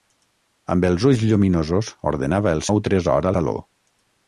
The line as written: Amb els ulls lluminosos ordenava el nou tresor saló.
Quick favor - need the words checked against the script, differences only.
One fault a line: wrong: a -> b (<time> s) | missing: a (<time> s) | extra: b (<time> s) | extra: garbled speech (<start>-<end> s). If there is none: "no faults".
no faults